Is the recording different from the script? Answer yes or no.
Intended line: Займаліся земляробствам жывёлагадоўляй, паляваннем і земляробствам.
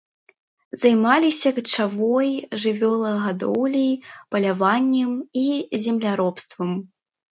yes